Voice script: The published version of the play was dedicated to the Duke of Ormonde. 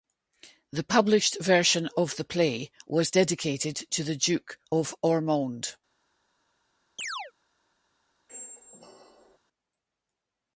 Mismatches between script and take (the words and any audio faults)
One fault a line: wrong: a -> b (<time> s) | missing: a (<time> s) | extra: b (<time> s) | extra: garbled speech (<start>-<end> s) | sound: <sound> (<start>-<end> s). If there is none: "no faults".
sound: chirp (7.0-7.3 s)
sound: squeak (8.3-9.4 s)